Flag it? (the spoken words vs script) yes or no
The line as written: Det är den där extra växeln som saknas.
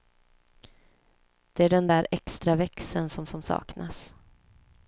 yes